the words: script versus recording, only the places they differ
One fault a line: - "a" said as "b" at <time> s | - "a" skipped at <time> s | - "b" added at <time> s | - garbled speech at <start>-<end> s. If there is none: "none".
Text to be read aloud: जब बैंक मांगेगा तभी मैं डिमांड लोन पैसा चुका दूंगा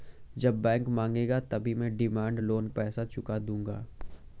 none